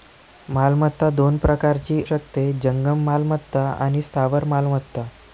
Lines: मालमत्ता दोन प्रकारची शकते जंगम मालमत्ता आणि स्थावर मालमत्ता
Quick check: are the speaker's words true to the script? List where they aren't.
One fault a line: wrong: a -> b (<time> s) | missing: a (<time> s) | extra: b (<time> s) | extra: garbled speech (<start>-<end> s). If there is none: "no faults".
no faults